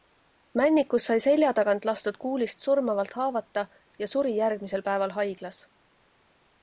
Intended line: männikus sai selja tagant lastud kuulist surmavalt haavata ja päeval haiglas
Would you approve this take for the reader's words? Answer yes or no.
no